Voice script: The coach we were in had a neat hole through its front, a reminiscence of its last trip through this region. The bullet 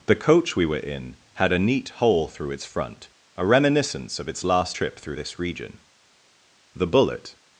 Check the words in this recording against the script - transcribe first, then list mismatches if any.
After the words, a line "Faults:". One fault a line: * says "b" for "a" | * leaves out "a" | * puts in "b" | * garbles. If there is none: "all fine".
The coach we were in had a neat hole through its front, a reminiscence of its last trip through this region. The bullet
Faults:
all fine